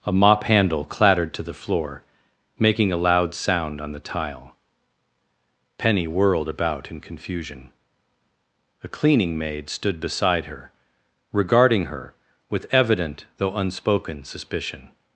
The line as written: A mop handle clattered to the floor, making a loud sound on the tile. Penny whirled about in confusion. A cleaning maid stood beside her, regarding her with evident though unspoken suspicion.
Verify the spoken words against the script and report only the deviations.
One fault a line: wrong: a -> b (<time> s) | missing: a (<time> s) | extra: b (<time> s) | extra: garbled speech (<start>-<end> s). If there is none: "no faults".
no faults